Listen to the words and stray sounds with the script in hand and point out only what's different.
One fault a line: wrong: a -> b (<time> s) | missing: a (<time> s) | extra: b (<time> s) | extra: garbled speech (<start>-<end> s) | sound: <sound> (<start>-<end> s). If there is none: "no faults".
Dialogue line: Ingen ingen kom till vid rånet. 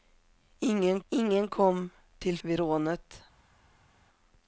no faults